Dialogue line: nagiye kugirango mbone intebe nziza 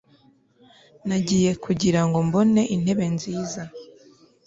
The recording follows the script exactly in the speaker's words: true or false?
true